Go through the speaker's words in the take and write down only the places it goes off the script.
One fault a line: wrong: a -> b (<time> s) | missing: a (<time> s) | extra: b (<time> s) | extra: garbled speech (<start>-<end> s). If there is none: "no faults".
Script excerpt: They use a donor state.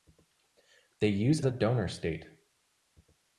no faults